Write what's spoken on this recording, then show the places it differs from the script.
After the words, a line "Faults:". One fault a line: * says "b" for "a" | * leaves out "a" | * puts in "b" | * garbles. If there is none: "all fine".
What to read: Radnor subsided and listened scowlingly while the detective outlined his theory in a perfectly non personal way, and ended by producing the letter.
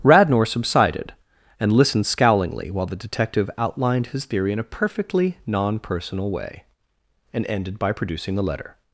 Radnor subsided and listened scowlingly while the detective outlined his theory in a perfectly non personal way, and ended by producing the letter.
Faults:
all fine